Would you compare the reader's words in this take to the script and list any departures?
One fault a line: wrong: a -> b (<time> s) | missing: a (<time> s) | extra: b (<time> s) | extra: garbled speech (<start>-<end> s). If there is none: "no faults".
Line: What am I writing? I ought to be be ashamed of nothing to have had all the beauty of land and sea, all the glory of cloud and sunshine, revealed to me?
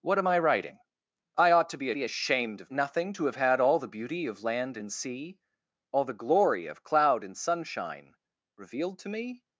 no faults